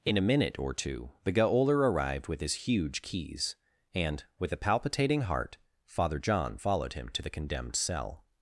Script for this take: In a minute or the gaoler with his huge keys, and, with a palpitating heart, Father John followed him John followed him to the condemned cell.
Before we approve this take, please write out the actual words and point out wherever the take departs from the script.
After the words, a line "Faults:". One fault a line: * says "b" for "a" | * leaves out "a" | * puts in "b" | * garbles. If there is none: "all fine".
In a minute or two the gaoler arrived with his huge keys, and, with a palpitating heart, Father John followed him to the condemned cell.
Faults:
* puts in "two"
* puts in "arrived"
* leaves out "John followed him"